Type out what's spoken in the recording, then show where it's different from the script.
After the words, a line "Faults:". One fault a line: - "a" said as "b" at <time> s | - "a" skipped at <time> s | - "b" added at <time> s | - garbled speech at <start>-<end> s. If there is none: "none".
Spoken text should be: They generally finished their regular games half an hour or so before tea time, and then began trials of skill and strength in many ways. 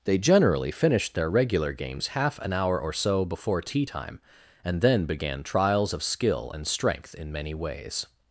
They generally finished their regular games half an hour or so before tea time, and then began trials of skill and strength in many ways.
Faults:
none